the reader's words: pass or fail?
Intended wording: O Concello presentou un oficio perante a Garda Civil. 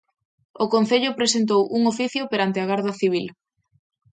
pass